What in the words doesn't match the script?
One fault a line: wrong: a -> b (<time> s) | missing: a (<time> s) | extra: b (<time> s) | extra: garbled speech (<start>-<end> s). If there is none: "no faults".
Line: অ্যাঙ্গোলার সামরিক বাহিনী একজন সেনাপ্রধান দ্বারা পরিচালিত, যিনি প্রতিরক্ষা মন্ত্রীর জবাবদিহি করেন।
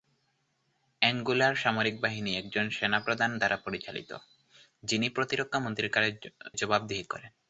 no faults